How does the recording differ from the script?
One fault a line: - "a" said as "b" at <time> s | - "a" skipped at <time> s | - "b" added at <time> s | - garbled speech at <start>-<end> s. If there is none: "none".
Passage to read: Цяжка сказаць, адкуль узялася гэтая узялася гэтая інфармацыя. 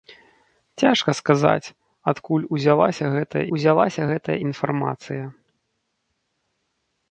none